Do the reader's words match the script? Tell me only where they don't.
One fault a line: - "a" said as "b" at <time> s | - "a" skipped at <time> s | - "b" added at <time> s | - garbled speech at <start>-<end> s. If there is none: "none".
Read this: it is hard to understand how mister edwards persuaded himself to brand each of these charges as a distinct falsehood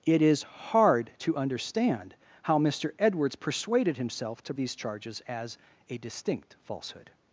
- "brand each of" skipped at 4.5 s